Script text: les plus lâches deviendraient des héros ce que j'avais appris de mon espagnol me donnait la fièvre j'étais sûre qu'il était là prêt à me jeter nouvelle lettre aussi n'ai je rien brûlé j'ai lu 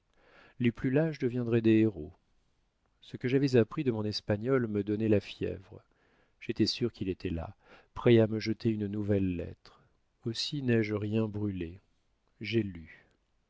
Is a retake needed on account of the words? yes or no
yes